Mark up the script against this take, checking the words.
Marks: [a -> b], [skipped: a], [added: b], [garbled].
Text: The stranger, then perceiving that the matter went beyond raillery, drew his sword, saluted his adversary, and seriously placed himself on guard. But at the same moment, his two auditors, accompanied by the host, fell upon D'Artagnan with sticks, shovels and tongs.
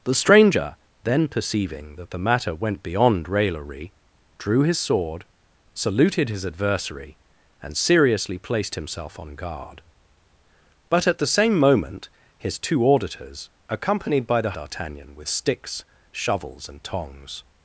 The stranger, then perceiving that the matter went beyond raillery, drew his sword, saluted his adversary, and seriously placed himself on guard. But at the same moment, his two auditors, accompanied by the [skipped: host, fell upon] D'Artagnan with sticks, shovels and tongs.